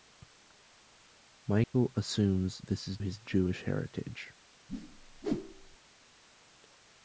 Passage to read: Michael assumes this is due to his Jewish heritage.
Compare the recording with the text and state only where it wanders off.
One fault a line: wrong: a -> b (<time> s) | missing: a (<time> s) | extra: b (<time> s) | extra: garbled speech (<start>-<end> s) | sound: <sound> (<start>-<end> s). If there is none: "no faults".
sound: dropout (1.6-1.7 s)
missing: due to (3.0 s)
sound: whoosh (4.7-5.8 s)